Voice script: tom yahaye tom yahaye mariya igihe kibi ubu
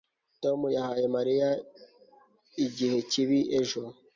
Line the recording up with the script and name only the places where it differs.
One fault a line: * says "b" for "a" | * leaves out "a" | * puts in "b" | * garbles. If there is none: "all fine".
* leaves out "tom yahaye"
* says "ejo" for "ubu"